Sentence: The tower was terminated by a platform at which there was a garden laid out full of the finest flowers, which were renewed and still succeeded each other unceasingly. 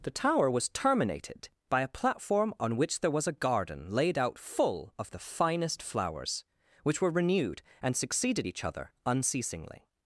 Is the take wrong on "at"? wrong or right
wrong